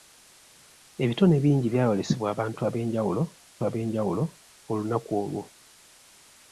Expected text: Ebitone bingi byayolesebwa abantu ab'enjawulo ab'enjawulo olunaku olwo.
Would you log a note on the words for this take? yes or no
no